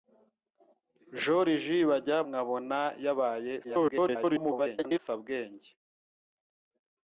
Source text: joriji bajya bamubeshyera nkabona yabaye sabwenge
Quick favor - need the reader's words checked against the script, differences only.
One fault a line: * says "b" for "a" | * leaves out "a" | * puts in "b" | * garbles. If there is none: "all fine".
* leaves out "bamubeshyera"
* garbles